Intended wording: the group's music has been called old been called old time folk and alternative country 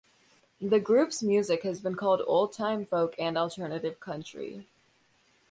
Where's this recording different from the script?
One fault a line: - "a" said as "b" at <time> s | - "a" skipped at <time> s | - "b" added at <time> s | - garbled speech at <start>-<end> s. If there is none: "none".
- "been called old" skipped at 2.5 s